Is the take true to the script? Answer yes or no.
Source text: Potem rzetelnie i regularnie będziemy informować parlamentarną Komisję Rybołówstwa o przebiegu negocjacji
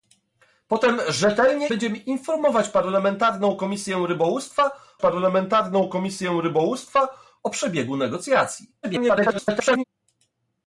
no